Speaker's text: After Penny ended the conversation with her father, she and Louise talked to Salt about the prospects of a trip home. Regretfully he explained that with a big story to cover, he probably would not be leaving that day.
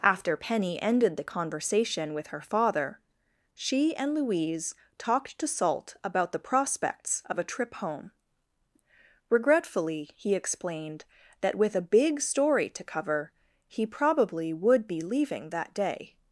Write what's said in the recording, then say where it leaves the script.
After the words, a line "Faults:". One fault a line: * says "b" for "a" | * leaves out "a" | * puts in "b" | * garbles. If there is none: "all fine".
After Penny ended the conversation with her father, she and Louise talked to Salt about the prospects of a trip home. Regretfully he explained that with a big story to cover, he probably would be leaving that day.
Faults:
* leaves out "not"